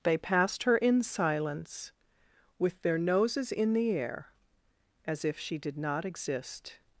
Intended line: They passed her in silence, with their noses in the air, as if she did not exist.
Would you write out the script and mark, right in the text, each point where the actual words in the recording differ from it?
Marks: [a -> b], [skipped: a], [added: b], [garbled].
They passed her in silence, with their noses in the air, as if she did not exist.